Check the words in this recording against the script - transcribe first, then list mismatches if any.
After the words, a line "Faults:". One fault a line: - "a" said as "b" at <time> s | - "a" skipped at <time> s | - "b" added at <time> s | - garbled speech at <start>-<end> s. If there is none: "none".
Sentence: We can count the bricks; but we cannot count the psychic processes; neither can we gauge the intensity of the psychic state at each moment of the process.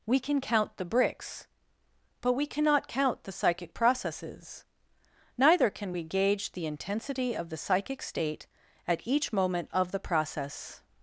We can count the bricks; but we cannot count the psychic processes; neither can we gauge the intensity of the psychic state at each moment of the process.
Faults:
none